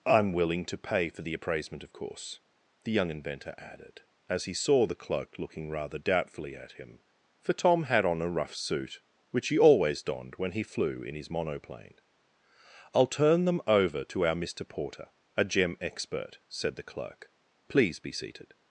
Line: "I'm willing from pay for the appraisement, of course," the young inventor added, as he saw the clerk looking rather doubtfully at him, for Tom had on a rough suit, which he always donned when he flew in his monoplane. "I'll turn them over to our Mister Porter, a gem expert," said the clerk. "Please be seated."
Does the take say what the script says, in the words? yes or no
no